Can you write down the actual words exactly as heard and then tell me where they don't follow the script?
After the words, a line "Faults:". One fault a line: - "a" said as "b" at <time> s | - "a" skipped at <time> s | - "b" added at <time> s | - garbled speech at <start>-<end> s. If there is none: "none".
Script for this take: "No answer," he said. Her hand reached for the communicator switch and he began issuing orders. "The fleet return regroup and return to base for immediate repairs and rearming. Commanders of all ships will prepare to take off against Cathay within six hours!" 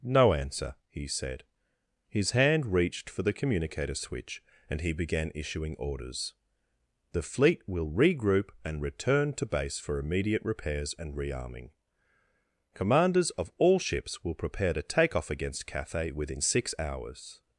"No answer," he said. His hand reached for the communicator switch and he began issuing orders. "The fleet will regroup and return to base for immediate repairs and rearming. Commanders of all ships will prepare to take off against Cathay within six hours!"
Faults:
- "Her" said as "His" at 2.1 s
- "return" said as "will" at 7.7 s